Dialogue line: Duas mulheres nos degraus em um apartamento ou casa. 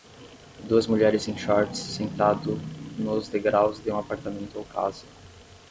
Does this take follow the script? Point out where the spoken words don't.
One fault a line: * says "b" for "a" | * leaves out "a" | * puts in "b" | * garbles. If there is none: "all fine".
* puts in "em shorts sentado"
* says "de" for "em"